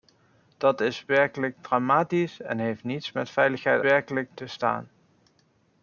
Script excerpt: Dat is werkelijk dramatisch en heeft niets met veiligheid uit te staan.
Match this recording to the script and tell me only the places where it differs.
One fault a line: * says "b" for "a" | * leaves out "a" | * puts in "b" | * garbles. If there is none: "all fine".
* says "werkelijk" for "uit"